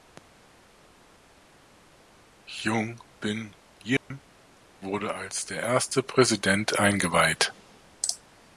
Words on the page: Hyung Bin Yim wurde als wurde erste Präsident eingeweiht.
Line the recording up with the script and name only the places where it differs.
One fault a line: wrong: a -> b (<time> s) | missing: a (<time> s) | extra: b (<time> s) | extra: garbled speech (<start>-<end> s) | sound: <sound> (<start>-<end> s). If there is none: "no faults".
sound: dropout (4.0-4.1 s)
wrong: wurde -> der (5.5 s)